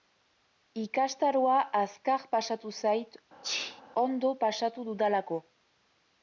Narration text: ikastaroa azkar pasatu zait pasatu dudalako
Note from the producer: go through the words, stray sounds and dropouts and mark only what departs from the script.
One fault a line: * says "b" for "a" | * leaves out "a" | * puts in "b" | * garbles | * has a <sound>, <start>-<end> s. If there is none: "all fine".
* has a sneeze, 3.4-3.8 s
* puts in "ondo"